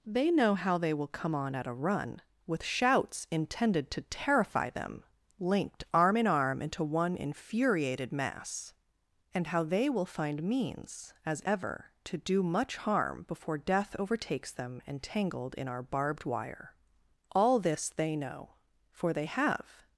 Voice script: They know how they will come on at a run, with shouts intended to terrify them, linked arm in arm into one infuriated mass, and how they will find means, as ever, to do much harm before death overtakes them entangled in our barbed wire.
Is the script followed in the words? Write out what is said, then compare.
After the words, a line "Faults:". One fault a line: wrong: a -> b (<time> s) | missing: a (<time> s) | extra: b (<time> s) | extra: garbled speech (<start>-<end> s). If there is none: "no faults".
They know how they will come on at a run, with shouts intended to terrify them, linked arm in arm into one infuriated mass, and how they will find means, as ever, to do much harm before death overtakes them entangled in our barbed wire. All this they know, for they have
Faults:
extra: All this they know for they have (17.3 s)